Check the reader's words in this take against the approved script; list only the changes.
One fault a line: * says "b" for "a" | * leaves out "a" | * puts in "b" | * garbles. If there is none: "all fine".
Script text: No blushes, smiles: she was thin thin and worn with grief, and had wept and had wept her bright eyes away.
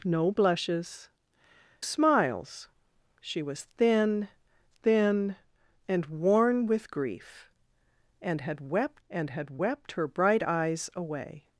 all fine